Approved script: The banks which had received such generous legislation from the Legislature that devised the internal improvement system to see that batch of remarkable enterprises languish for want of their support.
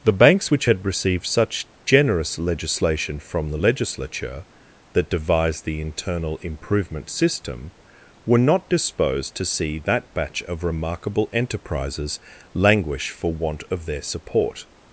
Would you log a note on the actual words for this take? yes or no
yes